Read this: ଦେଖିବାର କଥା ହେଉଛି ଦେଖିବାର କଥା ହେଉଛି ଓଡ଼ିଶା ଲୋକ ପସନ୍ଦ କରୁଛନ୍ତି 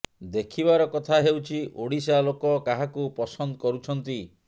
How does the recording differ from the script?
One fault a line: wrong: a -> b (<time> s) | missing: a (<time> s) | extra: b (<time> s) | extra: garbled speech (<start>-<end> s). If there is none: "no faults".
missing: ଦେଖିବାର କଥା ହେଉଛି (1.6 s)
extra: କାହାକୁ (2.7 s)